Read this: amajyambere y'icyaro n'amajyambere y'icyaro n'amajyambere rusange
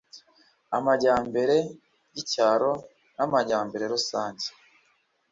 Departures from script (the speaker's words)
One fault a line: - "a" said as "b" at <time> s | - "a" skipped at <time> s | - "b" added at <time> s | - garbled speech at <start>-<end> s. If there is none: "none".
- "y'icyaro n'amajyambere" skipped at 3.8 s